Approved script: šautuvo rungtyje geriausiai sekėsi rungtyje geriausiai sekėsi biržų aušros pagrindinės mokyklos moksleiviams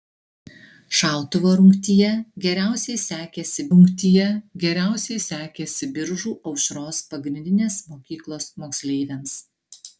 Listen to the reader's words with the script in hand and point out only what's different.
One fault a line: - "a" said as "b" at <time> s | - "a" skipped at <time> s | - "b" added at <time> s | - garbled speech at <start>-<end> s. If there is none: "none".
none